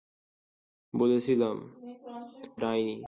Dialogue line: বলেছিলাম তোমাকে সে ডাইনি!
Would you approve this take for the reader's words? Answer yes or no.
no